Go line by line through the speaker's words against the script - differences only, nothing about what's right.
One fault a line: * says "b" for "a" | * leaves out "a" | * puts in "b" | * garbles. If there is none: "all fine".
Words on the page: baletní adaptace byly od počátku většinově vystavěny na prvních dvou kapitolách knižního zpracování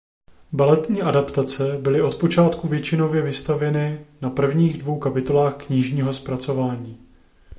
all fine